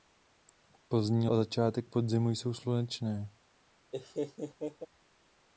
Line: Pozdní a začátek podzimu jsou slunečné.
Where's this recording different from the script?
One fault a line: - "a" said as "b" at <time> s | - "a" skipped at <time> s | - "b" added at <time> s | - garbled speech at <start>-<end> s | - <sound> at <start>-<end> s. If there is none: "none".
- laugh at 3.9-4.9 s